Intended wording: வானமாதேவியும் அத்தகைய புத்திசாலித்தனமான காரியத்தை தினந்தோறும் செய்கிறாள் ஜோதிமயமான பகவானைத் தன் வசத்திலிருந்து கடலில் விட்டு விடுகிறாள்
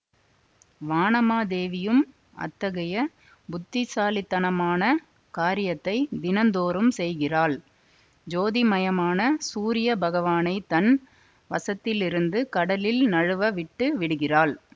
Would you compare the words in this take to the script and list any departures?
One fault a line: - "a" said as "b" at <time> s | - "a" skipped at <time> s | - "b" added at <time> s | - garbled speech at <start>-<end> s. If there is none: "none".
- "சூரிய" added at 9.5 s
- "நழுவ" added at 13.1 s